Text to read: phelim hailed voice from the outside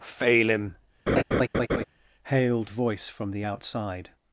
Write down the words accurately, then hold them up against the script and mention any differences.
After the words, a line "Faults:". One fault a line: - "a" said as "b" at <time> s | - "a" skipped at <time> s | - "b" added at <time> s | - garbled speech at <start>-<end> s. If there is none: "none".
phelim hailed voice from the outside
Faults:
none